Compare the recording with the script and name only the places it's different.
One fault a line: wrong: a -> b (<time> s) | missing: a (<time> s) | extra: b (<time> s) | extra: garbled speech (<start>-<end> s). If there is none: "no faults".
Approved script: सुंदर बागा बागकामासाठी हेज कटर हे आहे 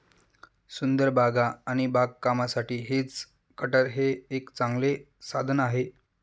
extra: आणि (1.7 s)
extra: एक चांगले साधन (4.3 s)